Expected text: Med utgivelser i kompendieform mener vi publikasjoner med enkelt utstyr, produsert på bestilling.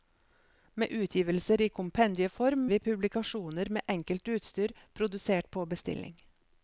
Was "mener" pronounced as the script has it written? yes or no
no